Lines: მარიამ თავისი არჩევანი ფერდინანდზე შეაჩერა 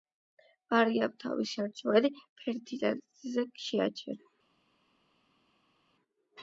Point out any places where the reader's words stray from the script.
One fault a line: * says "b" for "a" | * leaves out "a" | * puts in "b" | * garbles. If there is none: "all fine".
all fine